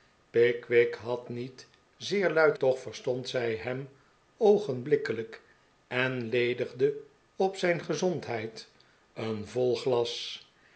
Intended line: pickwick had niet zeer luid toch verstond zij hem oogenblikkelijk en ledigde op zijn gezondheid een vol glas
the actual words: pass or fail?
pass